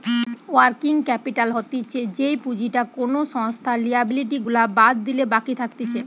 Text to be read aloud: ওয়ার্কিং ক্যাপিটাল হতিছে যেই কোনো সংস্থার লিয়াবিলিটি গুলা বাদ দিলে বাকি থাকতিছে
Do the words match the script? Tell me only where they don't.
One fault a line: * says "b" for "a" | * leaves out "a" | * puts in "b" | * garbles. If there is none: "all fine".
* puts in "পুঁজিটা"